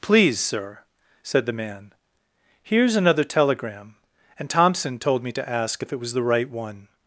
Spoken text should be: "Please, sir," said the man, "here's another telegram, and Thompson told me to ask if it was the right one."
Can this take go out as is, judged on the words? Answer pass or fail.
pass